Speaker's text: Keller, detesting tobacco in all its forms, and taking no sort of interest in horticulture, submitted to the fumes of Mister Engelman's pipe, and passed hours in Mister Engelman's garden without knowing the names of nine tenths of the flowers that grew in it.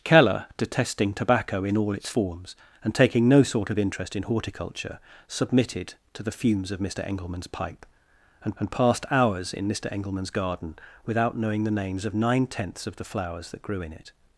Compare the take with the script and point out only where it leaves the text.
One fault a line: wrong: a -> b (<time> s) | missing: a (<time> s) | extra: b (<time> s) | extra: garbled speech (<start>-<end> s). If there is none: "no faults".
extra: and (8.6 s)